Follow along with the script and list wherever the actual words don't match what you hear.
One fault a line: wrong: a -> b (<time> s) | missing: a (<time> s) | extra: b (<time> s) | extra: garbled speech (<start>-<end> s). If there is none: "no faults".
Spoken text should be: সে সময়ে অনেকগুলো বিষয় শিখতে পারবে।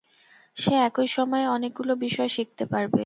extra: একই (0.9 s)